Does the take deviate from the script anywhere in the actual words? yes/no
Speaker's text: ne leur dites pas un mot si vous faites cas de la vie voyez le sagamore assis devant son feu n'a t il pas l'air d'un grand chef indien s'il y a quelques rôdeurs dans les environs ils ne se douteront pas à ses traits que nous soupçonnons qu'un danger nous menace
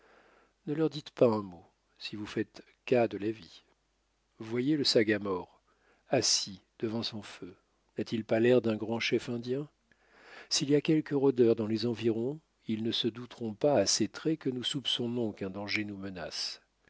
no